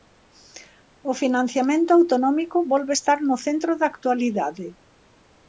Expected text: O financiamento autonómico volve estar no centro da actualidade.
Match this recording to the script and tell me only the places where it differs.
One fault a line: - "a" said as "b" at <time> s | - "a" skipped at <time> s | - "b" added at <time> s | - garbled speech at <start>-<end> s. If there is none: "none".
none